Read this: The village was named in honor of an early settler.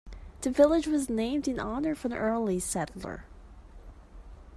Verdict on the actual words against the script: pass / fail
pass